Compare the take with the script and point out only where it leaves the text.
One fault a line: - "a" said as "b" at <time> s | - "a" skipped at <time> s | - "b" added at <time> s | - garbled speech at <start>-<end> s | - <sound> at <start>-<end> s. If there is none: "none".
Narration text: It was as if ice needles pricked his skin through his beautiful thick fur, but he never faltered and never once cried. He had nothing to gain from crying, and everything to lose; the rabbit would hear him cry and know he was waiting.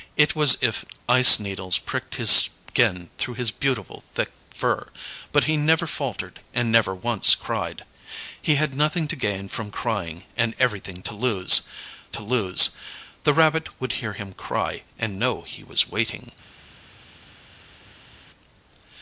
- "to lose" added at 12.1 s